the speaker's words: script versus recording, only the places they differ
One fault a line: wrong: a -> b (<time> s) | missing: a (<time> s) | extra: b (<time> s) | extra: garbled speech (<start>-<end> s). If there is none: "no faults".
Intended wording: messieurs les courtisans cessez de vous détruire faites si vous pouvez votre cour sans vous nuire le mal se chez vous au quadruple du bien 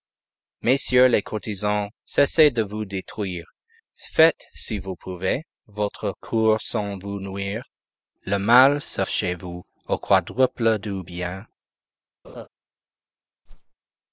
no faults